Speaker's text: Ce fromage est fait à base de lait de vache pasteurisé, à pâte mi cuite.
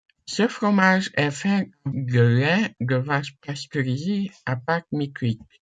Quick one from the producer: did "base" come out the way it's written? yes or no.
no